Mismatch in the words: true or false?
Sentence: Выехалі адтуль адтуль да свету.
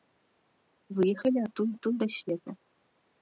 false